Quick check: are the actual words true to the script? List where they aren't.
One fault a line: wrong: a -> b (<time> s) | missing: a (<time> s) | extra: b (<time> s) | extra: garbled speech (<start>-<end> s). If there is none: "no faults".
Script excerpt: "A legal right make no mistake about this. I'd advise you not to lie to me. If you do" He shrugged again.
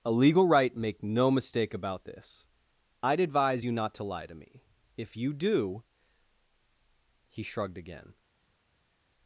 no faults